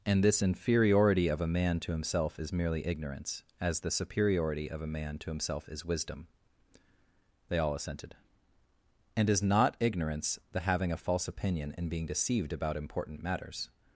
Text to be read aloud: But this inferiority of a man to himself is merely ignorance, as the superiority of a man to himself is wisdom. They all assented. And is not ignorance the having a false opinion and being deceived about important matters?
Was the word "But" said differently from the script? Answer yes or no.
yes